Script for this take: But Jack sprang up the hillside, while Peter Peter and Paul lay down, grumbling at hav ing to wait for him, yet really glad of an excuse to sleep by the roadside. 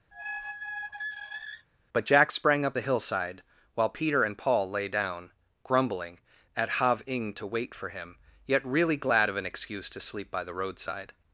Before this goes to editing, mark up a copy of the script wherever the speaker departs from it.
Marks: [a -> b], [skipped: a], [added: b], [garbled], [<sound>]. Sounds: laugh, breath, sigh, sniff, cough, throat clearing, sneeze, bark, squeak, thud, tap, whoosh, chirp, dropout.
[squeak] But Jack sprang up the hillside, while Peter [skipped: Peter] and Paul lay down, grumbling at hav ing to wait for him, yet really glad of an excuse to sleep by the roadside.